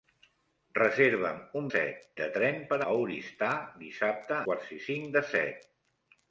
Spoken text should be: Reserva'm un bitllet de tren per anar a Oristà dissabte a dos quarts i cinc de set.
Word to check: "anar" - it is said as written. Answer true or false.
false